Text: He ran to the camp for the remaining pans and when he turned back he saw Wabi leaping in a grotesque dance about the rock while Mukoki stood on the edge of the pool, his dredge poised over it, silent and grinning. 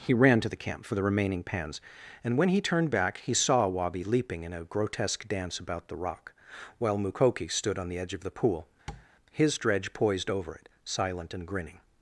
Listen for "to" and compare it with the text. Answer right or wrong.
right